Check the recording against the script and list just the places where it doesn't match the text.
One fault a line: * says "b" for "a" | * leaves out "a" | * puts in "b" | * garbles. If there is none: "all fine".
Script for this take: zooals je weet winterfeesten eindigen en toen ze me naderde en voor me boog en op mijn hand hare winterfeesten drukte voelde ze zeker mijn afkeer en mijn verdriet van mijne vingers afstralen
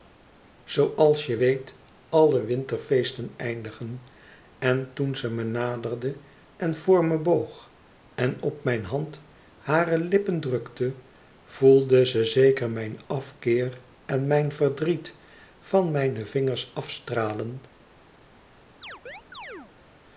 * puts in "alle"
* says "lippen" for "winterfeesten"